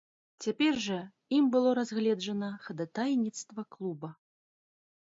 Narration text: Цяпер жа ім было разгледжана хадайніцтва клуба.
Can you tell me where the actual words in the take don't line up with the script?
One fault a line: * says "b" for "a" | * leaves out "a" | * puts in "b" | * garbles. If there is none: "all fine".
all fine